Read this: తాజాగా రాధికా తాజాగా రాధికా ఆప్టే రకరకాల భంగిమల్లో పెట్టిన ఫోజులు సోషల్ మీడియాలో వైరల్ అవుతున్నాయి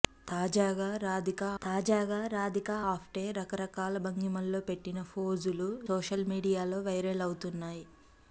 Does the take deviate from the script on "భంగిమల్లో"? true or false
false